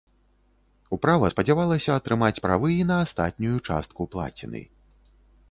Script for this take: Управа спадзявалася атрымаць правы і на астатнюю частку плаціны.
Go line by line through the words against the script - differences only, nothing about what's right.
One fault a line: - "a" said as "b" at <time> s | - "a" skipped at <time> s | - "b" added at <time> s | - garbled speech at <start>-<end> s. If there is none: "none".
none